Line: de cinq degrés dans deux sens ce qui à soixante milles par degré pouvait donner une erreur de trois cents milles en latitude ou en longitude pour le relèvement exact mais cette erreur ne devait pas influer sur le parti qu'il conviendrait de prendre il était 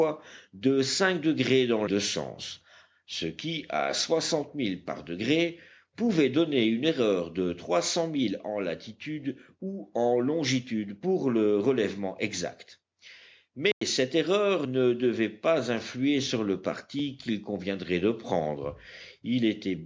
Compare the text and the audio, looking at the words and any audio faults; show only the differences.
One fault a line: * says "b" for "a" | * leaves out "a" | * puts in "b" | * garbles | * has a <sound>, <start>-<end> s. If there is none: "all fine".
* has a dropout, 13.7-13.8 s